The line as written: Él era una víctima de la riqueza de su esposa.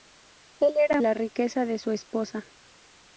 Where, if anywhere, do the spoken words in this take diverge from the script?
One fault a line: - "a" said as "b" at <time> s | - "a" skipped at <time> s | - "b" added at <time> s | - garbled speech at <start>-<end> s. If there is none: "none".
- "una víctima de" skipped at 1.0 s